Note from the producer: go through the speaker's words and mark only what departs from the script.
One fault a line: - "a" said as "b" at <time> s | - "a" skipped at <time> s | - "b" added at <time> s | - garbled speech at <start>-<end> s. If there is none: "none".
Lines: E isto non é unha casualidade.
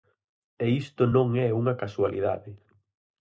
none